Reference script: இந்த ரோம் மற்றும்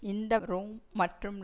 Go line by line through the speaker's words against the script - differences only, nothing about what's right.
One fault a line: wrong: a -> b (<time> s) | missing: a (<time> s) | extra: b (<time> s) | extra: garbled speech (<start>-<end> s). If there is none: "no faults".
no faults